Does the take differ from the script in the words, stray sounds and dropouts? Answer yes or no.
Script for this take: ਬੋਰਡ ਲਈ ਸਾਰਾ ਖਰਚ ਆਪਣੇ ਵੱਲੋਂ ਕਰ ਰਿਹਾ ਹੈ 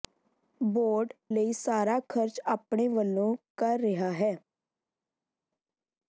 no